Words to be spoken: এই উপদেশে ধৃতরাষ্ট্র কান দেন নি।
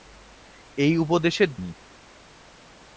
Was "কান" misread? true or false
true